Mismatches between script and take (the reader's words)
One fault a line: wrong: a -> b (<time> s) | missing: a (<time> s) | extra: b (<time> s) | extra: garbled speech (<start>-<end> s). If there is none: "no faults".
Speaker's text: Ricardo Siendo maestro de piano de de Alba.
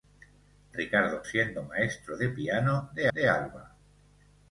no faults